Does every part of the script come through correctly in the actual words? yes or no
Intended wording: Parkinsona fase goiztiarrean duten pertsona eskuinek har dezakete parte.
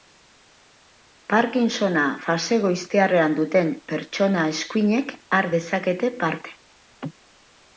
yes